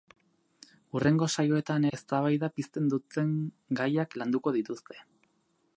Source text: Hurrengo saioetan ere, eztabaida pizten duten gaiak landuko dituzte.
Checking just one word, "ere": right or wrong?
wrong